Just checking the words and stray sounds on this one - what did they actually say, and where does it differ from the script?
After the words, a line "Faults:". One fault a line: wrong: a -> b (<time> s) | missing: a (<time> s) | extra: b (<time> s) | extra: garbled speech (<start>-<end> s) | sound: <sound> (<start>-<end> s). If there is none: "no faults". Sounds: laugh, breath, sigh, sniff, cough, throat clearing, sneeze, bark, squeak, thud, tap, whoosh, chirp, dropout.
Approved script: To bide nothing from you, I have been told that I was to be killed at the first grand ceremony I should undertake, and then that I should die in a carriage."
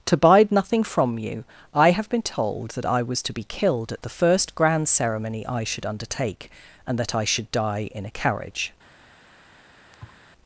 To bide nothing from you, I have been told that I was to be killed at the first grand ceremony I should undertake, and that I should die in a carriage."
Faults:
missing: then (7.0 s)
sound: thud (9.9-10.2 s)